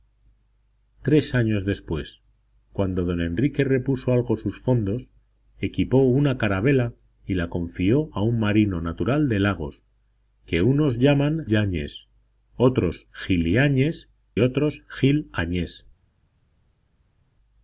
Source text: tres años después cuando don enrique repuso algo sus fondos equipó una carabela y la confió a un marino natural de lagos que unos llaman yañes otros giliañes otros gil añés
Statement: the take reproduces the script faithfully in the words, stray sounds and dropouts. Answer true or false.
true